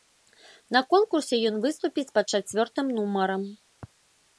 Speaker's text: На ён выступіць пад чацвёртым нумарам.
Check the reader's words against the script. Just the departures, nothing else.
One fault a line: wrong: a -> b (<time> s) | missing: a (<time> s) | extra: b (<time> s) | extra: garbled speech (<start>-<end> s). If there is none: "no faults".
extra: конкурсе (0.9 s)